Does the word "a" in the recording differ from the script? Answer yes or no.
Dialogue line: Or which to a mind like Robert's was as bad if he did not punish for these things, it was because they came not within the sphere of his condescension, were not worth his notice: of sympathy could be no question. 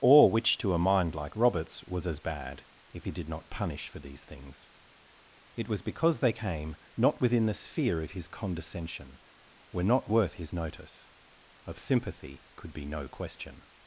no